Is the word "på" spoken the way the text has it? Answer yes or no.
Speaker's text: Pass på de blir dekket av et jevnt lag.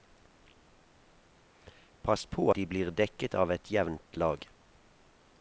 yes